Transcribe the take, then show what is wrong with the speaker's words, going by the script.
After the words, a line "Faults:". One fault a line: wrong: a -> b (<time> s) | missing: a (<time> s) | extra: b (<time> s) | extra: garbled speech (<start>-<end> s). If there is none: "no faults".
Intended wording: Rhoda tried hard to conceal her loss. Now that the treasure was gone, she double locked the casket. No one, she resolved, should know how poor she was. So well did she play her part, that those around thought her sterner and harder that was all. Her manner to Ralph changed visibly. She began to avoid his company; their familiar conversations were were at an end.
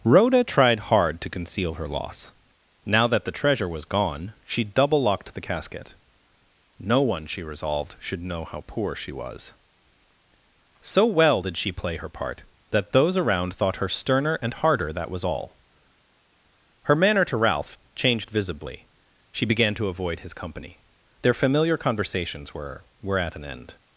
Rhoda tried hard to conceal her loss. Now that the treasure was gone, she double locked the casket. No one, she resolved, should know how poor she was. So well did she play her part, that those around thought her sterner and harder that was all. Her manner to Ralph changed visibly. She began to avoid his company; their familiar conversations were were at an end.
Faults:
no faults